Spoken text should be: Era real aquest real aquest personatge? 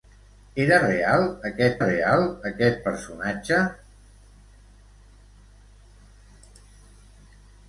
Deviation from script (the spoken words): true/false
false